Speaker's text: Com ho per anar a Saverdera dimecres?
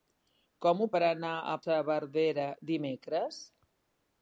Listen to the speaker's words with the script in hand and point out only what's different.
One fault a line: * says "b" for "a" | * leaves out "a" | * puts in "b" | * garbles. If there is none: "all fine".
all fine